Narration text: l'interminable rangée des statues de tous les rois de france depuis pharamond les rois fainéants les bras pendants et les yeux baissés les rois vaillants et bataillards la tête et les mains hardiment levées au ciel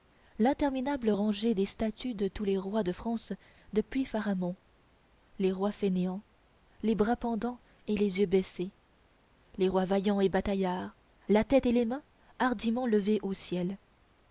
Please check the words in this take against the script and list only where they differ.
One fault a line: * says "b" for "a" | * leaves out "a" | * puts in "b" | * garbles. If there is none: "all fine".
all fine